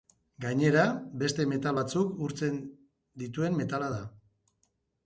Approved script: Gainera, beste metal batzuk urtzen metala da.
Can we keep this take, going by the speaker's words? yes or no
no